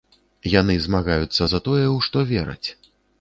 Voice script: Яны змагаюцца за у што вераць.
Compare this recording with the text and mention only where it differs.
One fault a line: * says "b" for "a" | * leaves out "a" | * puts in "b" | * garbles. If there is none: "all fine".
* puts in "тое"